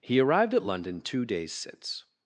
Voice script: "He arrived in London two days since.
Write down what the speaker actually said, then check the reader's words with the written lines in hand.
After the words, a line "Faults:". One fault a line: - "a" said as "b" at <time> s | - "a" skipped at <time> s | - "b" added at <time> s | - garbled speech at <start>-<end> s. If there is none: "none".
"He arrived at London two days since.
Faults:
- "in" said as "at" at 0.5 s